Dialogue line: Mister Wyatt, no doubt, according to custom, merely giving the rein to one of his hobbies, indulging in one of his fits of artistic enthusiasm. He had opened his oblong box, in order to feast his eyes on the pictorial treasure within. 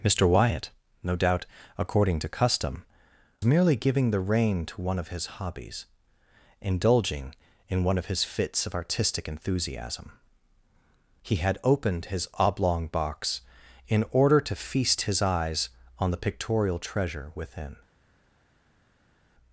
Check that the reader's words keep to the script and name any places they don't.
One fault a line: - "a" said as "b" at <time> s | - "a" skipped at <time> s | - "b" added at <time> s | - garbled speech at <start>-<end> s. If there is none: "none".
none